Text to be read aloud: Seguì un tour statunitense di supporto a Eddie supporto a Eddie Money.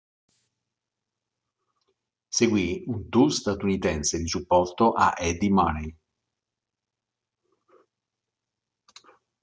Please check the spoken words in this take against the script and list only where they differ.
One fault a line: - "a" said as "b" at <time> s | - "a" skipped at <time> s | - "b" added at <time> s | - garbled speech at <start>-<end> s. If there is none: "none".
- "supporto a Eddie" skipped at 5.5 s